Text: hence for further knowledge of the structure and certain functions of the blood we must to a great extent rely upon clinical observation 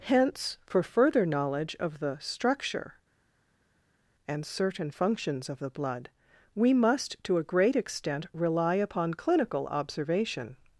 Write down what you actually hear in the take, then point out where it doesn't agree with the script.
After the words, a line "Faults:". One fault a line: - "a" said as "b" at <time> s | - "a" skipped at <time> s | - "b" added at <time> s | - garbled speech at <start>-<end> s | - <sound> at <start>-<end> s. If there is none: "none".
hence for further knowledge of the structure and certain functions of the blood we must to a great extent rely upon clinical observation
Faults:
none